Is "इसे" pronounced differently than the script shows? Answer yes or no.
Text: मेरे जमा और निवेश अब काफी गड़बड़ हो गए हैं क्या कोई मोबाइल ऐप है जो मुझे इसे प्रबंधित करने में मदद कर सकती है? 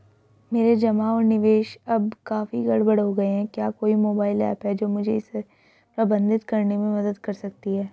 no